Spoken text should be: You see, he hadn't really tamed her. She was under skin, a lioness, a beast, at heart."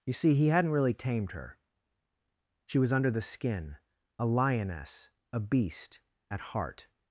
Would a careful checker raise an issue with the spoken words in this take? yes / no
yes